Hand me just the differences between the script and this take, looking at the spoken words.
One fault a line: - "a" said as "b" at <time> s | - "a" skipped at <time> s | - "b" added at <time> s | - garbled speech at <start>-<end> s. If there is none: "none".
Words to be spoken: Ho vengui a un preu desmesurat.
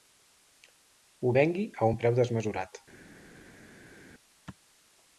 none